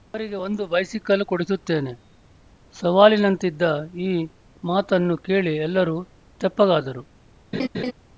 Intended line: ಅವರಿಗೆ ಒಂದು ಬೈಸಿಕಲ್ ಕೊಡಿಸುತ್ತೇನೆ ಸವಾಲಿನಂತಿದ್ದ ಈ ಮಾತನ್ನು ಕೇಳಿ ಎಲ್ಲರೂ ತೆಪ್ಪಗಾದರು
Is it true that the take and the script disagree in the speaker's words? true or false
false